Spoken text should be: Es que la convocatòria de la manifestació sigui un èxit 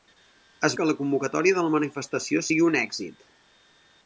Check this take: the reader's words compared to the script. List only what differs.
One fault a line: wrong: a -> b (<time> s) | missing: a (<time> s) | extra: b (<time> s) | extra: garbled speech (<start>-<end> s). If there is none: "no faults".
no faults